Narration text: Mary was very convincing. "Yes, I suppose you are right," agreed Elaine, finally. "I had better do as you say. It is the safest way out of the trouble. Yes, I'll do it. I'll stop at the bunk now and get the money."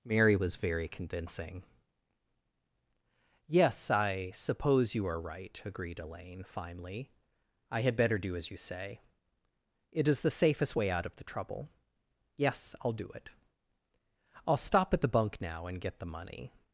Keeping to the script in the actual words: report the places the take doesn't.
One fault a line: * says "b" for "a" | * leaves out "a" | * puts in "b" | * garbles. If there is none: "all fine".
all fine